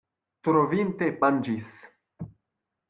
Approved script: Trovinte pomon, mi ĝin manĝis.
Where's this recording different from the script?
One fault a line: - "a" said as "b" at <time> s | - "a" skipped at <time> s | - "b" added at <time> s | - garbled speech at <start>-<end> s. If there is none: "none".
- "pomon mi ĝin" skipped at 1.1 s